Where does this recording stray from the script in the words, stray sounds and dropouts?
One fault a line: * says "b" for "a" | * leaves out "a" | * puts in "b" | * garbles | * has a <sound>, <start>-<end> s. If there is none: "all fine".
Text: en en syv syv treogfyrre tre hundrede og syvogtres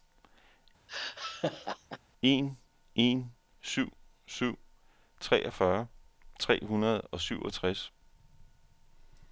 * has a laugh, 0.9-2.0 s